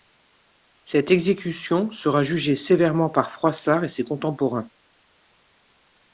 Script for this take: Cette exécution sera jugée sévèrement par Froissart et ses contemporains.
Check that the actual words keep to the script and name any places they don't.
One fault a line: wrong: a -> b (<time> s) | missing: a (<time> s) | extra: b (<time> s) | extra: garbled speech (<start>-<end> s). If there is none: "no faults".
no faults